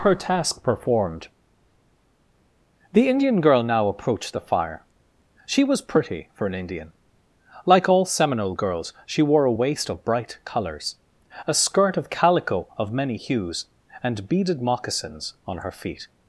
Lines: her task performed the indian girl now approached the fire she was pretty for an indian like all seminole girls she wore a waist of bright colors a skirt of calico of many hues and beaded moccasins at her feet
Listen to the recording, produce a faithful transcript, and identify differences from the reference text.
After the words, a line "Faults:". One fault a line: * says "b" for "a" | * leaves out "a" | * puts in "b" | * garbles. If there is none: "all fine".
her task performed the indian girl now approached the fire she was pretty for an indian like all seminole girls she wore a waist of bright colors a skirt of calico of many hues and beaded moccasins on her feet
Faults:
* says "on" for "at"